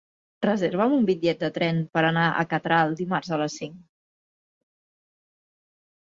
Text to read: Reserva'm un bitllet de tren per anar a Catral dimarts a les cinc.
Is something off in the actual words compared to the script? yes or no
no